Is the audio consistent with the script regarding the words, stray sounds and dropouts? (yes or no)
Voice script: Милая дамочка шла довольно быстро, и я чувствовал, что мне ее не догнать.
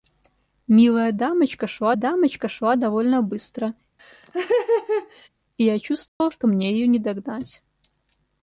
no